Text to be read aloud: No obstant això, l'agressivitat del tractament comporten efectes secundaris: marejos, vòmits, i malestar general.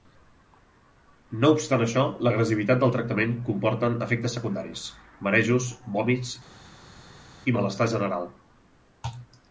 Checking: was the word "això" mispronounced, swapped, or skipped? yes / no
no